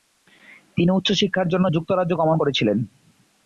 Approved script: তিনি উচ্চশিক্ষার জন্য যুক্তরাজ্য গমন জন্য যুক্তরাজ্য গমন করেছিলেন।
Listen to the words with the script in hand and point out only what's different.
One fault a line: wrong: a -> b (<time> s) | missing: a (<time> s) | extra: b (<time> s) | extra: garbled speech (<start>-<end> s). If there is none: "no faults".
missing: জন্য যুক্তরাজ্য গমন (2.4 s)